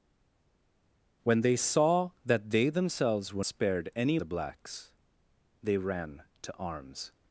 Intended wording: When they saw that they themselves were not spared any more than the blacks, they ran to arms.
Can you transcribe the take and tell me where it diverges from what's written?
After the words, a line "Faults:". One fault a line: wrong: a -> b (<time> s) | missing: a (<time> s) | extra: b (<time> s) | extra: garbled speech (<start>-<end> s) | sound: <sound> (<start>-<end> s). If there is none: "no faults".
When they saw that they themselves were spared any the blacks, they ran to arms.
Faults:
missing: not (3.4 s)
missing: more than (4.2 s)